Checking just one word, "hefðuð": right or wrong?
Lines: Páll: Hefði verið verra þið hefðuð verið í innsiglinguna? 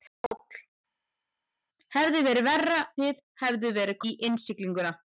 right